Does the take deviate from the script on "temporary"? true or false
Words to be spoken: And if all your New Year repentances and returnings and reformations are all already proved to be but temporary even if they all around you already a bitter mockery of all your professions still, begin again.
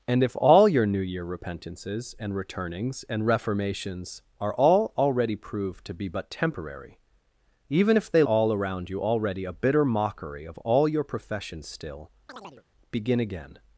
false